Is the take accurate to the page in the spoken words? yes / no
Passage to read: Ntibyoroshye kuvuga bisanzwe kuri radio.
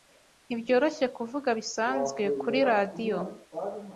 yes